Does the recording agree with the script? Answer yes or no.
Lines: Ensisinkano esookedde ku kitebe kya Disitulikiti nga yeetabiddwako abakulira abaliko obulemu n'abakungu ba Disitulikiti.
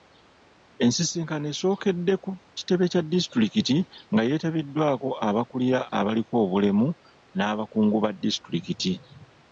yes